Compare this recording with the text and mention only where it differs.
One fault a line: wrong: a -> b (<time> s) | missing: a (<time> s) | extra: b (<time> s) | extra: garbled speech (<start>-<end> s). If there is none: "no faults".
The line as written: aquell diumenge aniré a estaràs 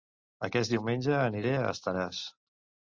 wrong: aquell -> aquest (0.5 s)